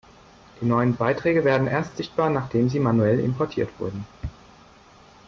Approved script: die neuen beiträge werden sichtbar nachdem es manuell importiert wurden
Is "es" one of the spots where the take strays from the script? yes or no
yes